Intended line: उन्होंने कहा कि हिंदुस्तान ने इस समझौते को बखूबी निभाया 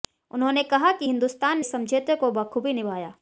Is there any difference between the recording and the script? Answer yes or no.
yes